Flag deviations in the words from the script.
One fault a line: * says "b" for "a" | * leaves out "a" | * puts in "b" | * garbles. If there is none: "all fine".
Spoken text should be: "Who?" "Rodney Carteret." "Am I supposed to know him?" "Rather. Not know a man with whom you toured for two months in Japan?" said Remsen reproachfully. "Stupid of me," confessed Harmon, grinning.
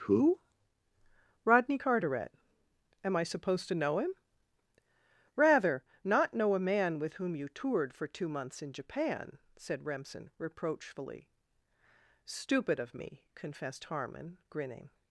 all fine